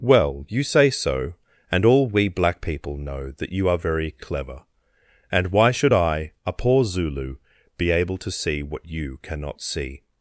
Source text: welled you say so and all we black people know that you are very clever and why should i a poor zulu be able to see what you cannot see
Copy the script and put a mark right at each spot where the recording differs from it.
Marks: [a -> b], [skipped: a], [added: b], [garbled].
[welled -> well] you say so and all we black people know that you are very clever and why should i a poor zulu be able to see what you cannot see